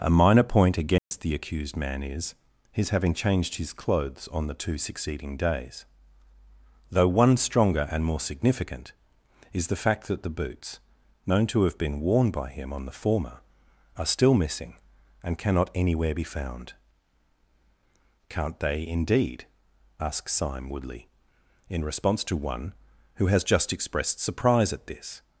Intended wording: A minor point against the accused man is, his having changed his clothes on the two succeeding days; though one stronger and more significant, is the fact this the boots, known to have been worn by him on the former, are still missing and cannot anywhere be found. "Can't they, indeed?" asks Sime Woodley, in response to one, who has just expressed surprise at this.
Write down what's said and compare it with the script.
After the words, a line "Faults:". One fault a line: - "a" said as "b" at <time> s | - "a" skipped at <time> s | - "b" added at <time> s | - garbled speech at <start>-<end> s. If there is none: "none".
A minor point against the accused man is, his having changed his clothes on the two succeeding days; though one stronger and more significant, is the fact that the boots, known to have been worn by him on the former, are still missing and cannot anywhere be found. "Can't they, indeed?" asks Sime Woodley, in response to one, who has just expressed surprise at this.
Faults:
- "this" said as "that" at 10.1 s